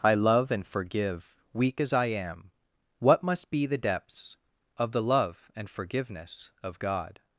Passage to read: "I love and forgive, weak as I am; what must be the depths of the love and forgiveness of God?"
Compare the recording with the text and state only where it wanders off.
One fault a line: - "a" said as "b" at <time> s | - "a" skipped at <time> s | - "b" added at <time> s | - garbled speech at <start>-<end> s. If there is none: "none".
none